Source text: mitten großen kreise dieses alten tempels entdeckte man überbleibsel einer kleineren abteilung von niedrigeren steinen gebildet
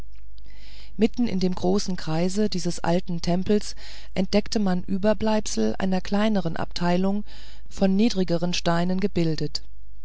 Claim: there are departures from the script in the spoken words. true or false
true